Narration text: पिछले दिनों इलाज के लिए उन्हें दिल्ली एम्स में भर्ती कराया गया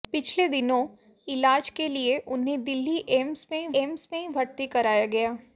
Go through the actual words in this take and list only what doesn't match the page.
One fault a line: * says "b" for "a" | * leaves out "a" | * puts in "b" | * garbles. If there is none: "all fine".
* puts in "एम्स में"